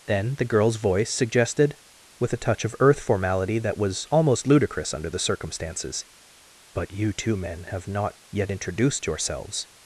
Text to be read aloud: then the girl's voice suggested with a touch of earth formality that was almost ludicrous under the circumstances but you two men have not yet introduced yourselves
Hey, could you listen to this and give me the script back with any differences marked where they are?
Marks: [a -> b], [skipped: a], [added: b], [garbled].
then the girl's voice suggested with a touch of earth formality that was almost ludicrous under the circumstances but you two men have not yet introduced yourselves